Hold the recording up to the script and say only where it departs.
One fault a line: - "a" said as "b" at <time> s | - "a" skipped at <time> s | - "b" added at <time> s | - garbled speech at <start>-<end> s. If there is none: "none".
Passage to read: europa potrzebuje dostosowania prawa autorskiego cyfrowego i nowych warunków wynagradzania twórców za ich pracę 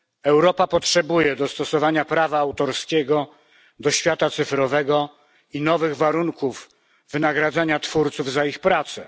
- "do świata" added at 3.8 s